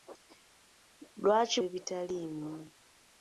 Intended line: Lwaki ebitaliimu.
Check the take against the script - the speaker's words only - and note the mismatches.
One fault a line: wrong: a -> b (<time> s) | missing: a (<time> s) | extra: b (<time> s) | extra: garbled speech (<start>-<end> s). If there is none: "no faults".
no faults